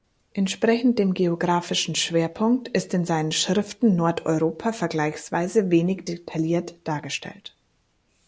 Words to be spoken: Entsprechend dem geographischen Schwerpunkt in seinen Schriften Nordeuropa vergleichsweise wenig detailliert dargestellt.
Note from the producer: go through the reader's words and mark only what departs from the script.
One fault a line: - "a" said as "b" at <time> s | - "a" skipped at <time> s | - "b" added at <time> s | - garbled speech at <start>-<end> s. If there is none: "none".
- "ist" added at 2.7 s